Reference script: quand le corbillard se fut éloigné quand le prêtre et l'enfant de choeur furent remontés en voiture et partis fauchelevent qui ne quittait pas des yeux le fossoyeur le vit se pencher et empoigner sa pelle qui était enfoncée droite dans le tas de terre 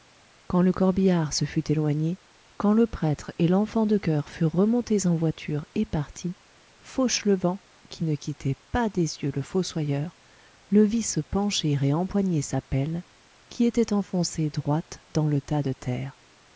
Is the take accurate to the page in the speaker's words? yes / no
yes